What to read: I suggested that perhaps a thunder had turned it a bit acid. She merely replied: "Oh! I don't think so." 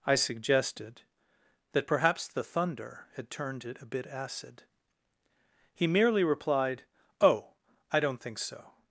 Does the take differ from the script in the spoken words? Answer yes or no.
yes